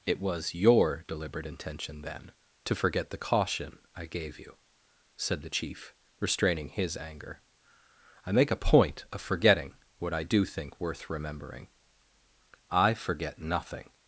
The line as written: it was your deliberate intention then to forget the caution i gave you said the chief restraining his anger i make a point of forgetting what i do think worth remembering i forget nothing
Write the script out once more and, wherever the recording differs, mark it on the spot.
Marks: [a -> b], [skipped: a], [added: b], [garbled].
it was your deliberate intention then to forget the caution i gave you said the chief restraining his anger i make a point of forgetting what i do think worth remembering i forget nothing